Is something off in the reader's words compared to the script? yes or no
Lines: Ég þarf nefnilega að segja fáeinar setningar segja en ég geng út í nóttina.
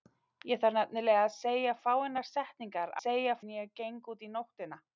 no